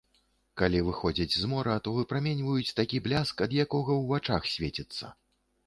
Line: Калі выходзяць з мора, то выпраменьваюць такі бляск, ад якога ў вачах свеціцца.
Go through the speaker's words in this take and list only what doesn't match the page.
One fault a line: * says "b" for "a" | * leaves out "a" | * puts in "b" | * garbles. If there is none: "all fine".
all fine